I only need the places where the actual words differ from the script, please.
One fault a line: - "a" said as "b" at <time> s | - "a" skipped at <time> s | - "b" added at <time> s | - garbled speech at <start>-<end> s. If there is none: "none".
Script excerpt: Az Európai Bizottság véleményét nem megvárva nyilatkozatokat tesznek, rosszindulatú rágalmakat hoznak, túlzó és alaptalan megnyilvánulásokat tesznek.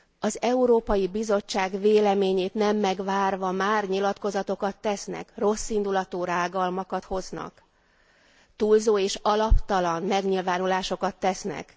- "már" added at 3.5 s